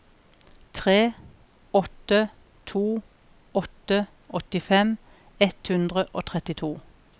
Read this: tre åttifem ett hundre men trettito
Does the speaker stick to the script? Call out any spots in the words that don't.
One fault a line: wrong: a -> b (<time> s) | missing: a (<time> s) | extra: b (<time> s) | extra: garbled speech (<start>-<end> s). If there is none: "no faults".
extra: åtte to åtte (1.7 s)
wrong: men -> og (6.1 s)